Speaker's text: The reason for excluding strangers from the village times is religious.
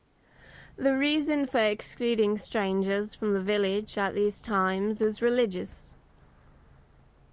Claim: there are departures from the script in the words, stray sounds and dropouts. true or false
true